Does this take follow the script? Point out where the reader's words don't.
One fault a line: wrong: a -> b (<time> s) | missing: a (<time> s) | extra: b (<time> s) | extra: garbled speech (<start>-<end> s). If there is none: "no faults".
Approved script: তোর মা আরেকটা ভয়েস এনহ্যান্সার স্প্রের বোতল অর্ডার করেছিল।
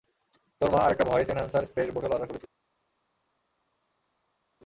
no faults